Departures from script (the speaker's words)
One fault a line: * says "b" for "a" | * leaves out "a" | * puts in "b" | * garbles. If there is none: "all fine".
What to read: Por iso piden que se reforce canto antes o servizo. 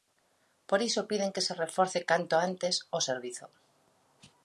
all fine